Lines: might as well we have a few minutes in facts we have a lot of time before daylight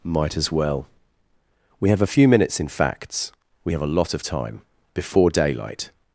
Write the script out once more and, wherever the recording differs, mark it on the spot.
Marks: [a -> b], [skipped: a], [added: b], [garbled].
might as well we have a few minutes in facts we have a lot of time before daylight